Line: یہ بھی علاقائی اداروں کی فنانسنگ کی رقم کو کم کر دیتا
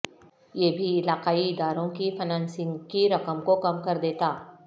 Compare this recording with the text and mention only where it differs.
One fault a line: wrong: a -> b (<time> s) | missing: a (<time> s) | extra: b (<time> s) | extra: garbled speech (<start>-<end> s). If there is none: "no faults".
no faults